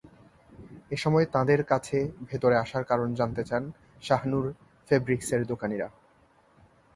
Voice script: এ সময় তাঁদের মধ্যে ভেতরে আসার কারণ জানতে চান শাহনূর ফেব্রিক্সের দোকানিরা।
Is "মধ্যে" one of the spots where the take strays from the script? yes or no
yes